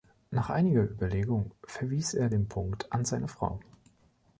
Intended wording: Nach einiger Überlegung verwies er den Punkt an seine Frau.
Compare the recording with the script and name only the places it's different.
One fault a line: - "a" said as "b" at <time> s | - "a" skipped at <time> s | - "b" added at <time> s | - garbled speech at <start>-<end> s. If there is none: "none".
none